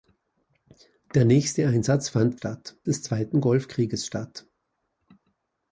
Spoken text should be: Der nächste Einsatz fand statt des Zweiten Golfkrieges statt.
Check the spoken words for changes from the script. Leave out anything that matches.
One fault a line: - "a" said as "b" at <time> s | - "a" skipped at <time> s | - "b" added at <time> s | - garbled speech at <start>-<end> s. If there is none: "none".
none